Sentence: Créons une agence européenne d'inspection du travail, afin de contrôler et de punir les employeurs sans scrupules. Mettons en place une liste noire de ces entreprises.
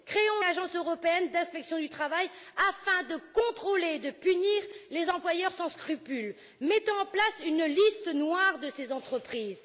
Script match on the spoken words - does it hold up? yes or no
no